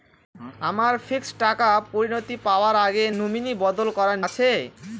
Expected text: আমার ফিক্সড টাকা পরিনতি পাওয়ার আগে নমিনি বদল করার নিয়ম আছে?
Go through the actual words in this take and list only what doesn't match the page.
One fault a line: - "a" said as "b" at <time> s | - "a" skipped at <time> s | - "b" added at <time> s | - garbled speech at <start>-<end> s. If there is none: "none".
- "নিয়ম" skipped at 4.2 s